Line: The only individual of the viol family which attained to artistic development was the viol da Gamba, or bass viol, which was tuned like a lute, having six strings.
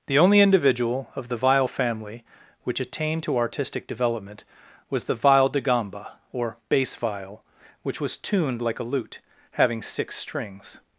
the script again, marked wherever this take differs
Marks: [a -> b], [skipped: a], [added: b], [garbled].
The only individual of the viol family which attained to artistic development was the viol da Gamba, or bass viol, which was tuned like a lute, having six strings.